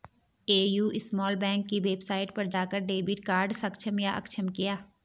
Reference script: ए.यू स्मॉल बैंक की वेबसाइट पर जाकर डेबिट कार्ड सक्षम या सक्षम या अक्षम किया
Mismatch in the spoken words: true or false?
true